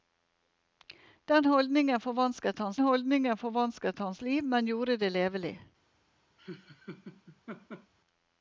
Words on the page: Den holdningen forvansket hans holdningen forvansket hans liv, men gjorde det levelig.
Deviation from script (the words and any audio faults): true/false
true